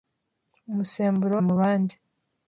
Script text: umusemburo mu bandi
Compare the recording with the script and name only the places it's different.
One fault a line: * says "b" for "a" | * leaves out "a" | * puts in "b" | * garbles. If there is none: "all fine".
all fine